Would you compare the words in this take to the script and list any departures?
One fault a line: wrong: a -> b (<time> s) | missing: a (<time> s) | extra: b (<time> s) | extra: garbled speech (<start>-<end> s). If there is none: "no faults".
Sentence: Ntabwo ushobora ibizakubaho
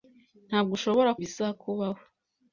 no faults